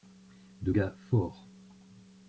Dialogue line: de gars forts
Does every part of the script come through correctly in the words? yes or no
yes